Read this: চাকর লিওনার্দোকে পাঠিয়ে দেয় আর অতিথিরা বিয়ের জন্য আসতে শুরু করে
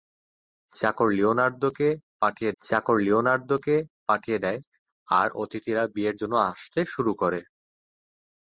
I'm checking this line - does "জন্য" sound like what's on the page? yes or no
yes